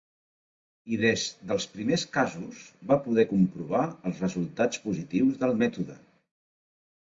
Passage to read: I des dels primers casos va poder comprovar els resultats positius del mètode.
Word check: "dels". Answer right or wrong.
right